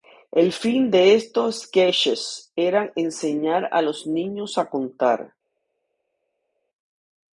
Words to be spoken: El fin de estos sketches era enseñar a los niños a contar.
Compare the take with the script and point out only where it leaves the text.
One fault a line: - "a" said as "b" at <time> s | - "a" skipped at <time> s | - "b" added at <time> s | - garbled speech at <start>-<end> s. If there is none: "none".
none